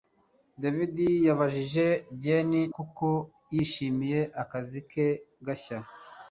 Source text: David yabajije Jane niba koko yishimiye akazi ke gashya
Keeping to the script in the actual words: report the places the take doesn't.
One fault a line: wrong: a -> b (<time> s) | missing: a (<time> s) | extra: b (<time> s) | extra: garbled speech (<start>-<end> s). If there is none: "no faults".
missing: niba (2.6 s)